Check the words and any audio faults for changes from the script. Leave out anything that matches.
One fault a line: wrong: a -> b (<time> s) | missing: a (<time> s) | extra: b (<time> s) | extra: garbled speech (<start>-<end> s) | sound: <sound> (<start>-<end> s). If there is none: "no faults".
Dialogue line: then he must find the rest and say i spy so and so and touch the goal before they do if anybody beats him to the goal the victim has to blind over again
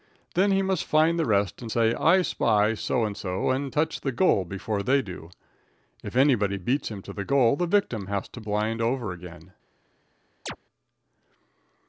sound: chirp (10.5-10.6 s)